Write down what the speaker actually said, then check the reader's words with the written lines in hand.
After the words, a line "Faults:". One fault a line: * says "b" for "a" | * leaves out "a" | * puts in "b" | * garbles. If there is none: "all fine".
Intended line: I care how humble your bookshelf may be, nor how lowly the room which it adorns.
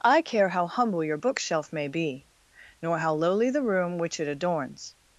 I care how humble your bookshelf may be, nor how lowly the room which it adorns.
Faults:
all fine